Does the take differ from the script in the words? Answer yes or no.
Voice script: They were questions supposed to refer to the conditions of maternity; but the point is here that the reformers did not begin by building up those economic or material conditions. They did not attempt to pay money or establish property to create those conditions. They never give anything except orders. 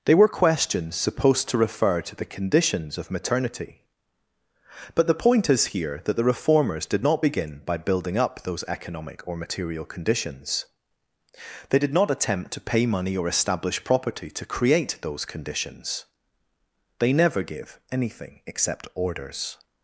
no